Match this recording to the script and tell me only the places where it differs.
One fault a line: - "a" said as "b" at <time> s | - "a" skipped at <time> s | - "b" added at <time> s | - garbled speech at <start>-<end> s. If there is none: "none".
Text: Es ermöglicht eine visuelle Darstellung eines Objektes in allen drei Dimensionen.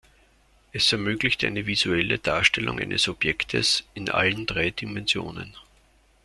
none